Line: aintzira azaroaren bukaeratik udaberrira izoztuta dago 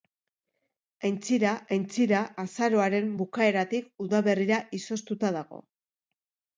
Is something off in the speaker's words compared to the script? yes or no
yes